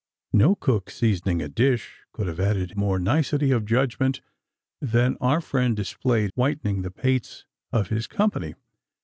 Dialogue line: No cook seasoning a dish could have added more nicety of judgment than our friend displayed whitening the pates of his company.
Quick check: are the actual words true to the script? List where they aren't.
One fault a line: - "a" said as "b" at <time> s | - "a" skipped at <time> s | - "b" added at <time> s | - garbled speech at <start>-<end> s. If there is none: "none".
none